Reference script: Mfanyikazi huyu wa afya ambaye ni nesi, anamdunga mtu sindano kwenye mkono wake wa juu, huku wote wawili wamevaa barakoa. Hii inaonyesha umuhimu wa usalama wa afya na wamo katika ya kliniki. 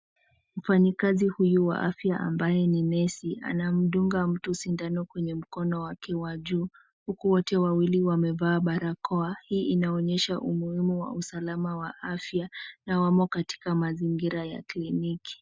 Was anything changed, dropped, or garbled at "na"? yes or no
no